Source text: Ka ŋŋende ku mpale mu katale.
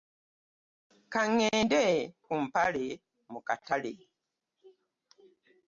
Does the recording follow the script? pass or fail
pass